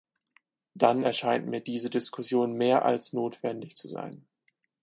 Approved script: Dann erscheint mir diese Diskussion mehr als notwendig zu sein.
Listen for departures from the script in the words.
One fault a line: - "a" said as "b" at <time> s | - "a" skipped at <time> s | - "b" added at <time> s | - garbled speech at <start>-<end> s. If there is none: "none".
none